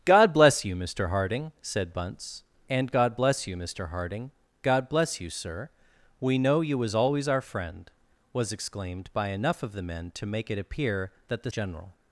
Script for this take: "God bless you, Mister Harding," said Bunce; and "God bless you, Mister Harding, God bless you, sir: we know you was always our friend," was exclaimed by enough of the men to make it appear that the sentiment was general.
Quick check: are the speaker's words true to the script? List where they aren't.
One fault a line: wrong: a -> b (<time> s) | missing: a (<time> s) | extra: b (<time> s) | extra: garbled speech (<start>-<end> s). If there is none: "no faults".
missing: sentiment was (11.5 s)